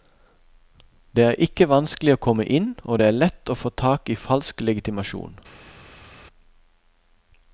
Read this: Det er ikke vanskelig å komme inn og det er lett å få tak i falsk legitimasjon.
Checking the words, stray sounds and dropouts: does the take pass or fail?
pass